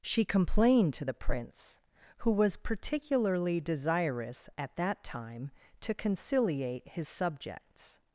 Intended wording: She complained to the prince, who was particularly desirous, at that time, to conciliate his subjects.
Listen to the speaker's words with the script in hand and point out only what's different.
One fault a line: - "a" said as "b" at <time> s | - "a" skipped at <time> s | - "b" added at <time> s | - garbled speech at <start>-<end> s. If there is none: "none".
none